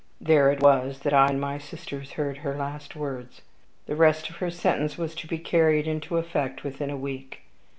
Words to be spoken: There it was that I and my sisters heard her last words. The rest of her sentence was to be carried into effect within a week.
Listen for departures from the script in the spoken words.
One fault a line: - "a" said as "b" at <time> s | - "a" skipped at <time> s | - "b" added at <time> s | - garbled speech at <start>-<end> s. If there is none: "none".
none